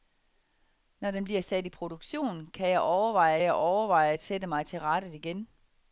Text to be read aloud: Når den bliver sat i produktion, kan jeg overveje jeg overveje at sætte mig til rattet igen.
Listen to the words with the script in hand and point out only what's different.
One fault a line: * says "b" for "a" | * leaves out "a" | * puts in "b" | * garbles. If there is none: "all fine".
all fine